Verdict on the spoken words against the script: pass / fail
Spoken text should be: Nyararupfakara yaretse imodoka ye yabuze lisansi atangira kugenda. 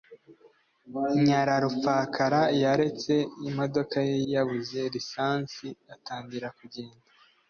pass